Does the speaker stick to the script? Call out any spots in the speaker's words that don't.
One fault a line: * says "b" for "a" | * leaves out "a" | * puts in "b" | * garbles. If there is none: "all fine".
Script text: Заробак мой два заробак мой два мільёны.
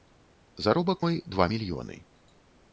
* leaves out "заробак мой два"